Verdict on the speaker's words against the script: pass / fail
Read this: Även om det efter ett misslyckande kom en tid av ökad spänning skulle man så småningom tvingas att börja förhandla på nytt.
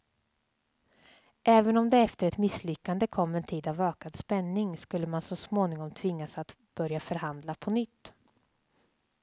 pass